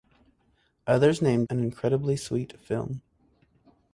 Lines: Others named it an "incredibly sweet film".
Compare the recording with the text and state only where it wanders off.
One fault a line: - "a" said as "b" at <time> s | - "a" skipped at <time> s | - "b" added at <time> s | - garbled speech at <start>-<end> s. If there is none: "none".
- "it" skipped at 1.5 s